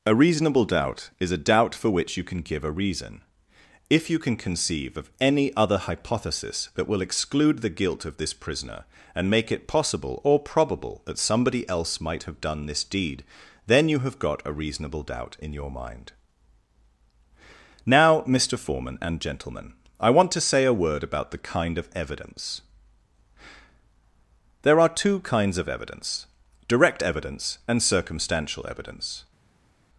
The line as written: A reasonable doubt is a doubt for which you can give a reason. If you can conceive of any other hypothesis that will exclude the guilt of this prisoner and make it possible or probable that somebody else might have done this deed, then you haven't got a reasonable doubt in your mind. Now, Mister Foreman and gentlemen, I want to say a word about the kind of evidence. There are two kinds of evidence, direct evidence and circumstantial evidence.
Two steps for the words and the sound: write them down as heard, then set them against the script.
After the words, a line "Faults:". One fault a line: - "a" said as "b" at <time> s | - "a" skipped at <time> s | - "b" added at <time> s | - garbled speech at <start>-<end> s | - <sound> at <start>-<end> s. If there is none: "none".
A reasonable doubt is a doubt for which you can give a reason. If you can conceive of any other hypothesis that will exclude the guilt of this prisoner and make it possible or probable that somebody else might have done this deed, then you have got a reasonable doubt in your mind. Now, Mister Foreman and gentlemen, I want to say a word about the kind of evidence. There are two kinds of evidence, direct evidence and circumstantial evidence.
Faults:
- "haven't" said as "have" at 14.0 s